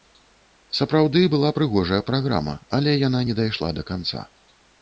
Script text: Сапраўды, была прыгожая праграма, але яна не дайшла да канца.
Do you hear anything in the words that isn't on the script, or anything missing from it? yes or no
no